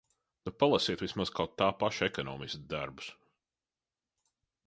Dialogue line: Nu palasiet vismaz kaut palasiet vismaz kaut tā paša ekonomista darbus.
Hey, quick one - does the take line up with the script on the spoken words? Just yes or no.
no